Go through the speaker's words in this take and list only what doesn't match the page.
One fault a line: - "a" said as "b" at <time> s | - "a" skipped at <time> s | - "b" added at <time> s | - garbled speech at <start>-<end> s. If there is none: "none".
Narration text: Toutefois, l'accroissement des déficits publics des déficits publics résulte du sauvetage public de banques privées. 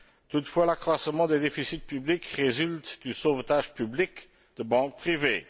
- "des déficits publics" skipped at 2.2 s